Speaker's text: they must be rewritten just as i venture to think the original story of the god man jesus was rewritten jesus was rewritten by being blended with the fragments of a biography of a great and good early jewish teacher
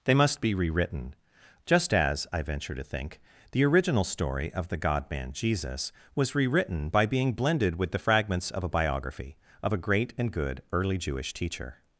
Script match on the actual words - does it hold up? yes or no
no